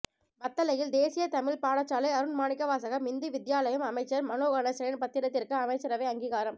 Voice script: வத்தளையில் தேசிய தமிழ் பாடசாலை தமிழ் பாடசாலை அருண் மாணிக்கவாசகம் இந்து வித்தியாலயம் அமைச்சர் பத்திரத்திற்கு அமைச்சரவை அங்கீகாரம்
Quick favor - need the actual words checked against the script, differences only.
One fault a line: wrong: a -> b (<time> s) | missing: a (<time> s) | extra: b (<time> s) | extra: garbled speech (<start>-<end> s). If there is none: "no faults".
missing: தமிழ் பாடசாலை (2.1 s)
extra: மனோ கணேசனின் (4.3 s)